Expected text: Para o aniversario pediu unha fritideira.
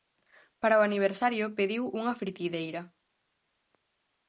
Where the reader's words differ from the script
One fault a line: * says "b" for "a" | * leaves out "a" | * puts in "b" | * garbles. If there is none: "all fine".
all fine